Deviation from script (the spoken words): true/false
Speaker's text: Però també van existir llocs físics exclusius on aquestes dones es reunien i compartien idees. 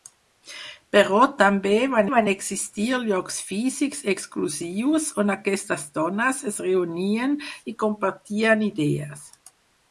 true